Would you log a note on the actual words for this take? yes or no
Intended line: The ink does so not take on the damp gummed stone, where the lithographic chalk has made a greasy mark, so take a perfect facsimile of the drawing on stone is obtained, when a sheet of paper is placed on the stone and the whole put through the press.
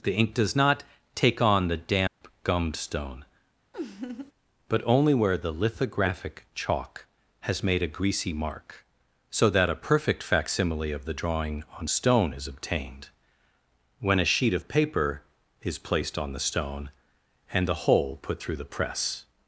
yes